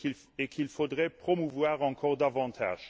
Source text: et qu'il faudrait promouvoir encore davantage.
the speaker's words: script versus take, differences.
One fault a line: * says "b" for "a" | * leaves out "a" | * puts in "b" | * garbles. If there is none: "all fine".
all fine